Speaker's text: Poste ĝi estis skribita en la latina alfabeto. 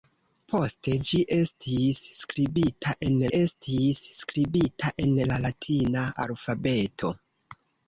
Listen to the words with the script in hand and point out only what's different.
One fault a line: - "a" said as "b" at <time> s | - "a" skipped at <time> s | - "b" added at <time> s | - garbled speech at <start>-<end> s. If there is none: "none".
- "estis skribita en" added at 3.4 s